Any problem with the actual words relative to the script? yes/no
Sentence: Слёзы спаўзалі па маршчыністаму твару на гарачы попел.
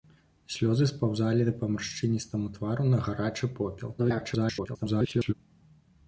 yes